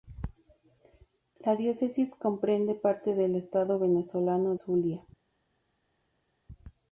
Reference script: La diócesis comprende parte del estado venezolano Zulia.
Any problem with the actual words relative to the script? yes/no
no